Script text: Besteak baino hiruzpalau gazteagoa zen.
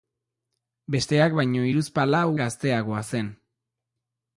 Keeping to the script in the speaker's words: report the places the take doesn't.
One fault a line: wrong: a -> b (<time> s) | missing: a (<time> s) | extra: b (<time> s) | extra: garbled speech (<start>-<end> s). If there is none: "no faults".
no faults